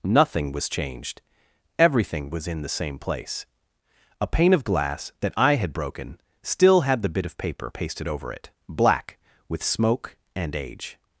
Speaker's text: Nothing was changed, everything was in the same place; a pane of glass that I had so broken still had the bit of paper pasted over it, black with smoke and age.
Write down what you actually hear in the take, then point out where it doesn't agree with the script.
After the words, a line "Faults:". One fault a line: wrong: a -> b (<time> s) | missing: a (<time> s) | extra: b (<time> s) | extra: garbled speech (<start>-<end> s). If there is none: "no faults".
Nothing was changed, everything was in the same place; a pane of glass that I had broken still had the bit of paper pasted over it, black with smoke and age.
Faults:
missing: so (5.7 s)